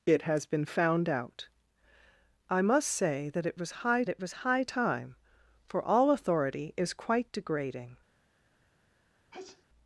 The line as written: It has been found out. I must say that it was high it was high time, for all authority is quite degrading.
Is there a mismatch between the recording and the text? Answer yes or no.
no